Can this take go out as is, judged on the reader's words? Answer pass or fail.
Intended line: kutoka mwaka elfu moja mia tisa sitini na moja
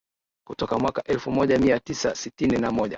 pass